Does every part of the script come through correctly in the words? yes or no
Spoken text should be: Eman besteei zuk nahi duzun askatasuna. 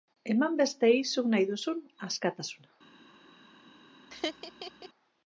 yes